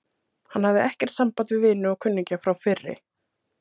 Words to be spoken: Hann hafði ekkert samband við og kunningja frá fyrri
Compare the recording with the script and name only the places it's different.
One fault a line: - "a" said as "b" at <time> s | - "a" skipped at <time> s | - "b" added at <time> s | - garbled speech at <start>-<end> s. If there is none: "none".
- "vini" added at 1.7 s